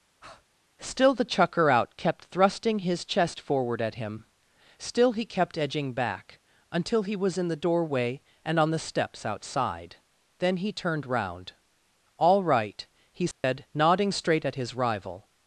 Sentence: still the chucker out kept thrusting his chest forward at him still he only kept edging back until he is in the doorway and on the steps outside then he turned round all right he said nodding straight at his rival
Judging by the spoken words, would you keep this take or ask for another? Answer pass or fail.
fail